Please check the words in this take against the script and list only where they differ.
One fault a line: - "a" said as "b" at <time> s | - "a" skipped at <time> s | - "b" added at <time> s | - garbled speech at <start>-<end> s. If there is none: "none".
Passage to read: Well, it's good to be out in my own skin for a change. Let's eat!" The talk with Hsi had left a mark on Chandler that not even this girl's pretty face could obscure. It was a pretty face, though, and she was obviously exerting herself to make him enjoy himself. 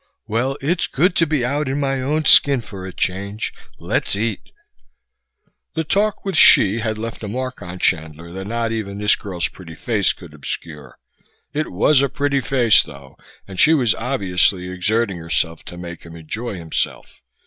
none